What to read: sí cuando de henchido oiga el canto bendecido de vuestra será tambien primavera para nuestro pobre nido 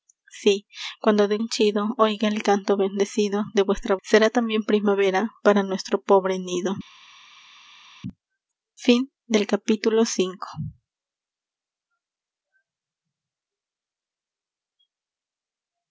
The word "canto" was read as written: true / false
true